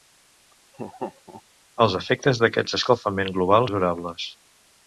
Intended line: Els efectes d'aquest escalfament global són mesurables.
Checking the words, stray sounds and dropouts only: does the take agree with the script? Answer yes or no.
no